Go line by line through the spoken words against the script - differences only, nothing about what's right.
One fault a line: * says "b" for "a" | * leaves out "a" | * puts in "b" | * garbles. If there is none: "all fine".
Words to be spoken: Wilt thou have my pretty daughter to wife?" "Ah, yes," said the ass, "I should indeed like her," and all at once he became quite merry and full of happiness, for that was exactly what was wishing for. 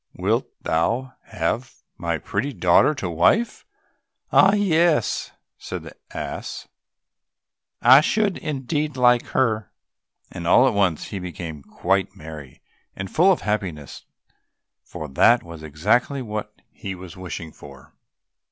* puts in "he"